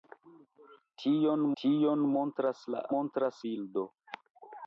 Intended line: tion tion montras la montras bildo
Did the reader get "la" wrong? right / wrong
right